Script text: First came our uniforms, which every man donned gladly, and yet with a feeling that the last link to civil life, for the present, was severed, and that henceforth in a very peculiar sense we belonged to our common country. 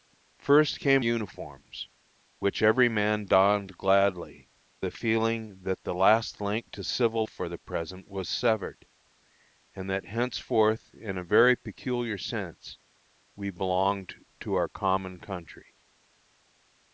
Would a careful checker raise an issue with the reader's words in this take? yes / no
yes